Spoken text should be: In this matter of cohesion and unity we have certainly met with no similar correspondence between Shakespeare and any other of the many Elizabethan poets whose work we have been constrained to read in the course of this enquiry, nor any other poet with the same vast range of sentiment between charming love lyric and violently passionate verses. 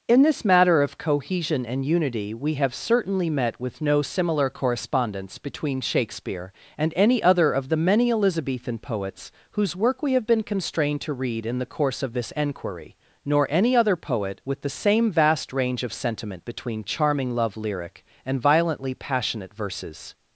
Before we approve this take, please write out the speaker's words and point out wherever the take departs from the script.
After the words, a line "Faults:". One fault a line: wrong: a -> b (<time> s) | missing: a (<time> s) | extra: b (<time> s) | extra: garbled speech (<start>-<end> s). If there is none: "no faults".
In this matter of cohesion and unity we have certainly met with no similar correspondence between Shakespeare and any other of the many Elizabethan poets whose work we have been constrained to read in the course of this enquiry, nor any other poet with the same vast range of sentiment between charming love lyric and violently passionate verses.
Faults:
no faults